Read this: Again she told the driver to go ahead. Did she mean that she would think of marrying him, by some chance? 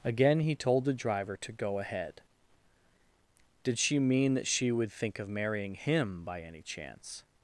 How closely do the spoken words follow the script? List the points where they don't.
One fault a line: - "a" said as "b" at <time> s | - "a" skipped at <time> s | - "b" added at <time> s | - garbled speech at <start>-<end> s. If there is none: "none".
- "she" said as "he" at 0.4 s
- "some" said as "any" at 6.4 s